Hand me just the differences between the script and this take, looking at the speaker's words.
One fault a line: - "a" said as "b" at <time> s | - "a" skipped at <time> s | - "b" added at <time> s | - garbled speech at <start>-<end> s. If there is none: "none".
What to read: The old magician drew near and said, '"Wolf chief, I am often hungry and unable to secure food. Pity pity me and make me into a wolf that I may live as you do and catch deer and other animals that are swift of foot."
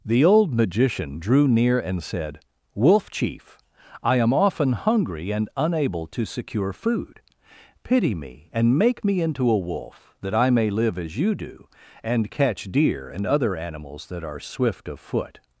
- "pity" skipped at 8.2 s